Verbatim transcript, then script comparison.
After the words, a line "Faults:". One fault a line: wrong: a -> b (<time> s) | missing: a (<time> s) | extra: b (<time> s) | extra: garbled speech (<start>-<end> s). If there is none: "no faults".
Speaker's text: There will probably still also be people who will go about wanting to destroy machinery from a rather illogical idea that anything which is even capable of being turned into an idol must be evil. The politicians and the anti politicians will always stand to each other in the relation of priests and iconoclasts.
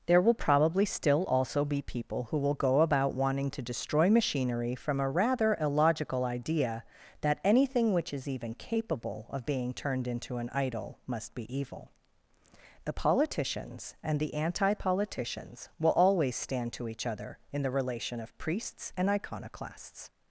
There will probably still also be people who will go about wanting to destroy machinery from a rather illogical idea that anything which is even capable of being turned into an idol must be evil. The politicians and the anti politicians will always stand to each other in the relation of priests and iconoclasts.
Faults:
no faults